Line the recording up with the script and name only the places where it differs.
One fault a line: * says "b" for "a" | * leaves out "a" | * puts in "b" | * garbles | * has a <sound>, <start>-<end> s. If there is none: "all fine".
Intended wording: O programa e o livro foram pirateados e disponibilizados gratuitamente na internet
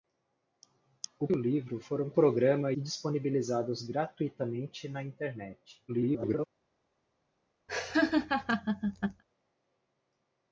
* leaves out "programa e"
* says "programa" for "pirateados"
* garbles
* has a laugh, 7.7-9.2 s